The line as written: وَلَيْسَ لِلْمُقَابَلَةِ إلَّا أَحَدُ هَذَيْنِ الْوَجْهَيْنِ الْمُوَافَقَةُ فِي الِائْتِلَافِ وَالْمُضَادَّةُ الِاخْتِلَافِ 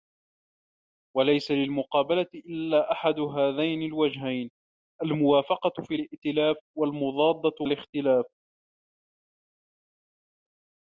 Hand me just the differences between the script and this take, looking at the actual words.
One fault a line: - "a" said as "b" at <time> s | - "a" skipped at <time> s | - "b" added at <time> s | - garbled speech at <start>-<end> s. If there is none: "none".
none